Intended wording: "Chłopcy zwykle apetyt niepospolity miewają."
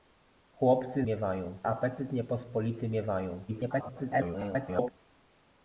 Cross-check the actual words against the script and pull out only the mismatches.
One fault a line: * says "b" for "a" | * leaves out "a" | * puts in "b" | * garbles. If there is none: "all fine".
* says "miewają" for "zwykle"
* garbles